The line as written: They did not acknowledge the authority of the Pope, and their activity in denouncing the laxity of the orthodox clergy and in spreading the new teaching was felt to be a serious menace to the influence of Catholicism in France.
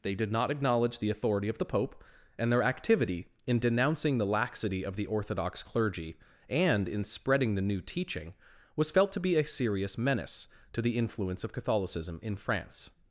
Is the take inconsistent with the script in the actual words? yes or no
no